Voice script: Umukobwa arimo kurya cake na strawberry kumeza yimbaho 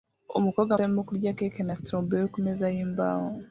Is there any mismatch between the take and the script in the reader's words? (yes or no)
no